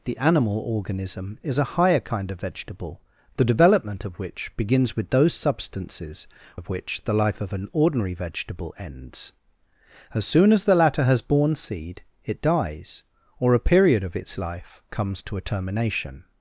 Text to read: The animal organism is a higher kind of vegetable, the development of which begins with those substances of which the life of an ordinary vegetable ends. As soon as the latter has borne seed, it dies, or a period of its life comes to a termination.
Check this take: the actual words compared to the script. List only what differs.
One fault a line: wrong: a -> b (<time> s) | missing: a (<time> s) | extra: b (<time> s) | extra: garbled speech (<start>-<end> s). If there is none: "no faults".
no faults